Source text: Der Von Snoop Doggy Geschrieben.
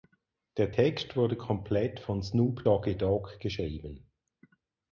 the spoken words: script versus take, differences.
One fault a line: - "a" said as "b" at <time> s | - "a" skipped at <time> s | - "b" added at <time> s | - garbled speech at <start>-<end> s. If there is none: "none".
- "Text wurde komplett" added at 0.7 s
- "Dogg" added at 3.0 s